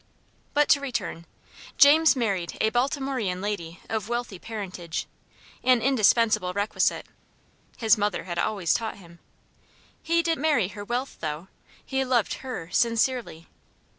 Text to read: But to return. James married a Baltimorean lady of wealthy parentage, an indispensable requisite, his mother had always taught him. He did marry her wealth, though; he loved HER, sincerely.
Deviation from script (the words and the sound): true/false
false